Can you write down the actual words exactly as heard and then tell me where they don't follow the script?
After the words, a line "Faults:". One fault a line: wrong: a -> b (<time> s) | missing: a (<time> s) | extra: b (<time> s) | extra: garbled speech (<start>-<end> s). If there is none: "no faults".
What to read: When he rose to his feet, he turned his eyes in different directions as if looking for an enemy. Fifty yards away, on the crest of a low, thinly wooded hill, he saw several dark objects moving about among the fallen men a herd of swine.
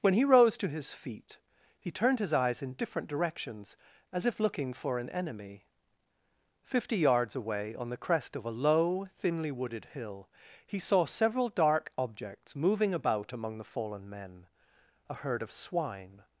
When he rose to his feet, he turned his eyes in different directions as if looking for an enemy. Fifty yards away, on the crest of a low, thinly wooded hill, he saw several dark objects moving about among the fallen men a herd of swine.
Faults:
no faults